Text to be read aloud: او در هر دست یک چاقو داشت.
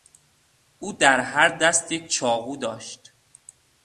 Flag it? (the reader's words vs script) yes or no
no